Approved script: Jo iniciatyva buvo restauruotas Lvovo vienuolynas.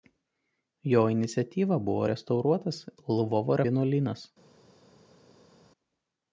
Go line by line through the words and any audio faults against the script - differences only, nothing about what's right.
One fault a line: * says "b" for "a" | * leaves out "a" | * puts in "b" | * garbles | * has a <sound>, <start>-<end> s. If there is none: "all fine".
all fine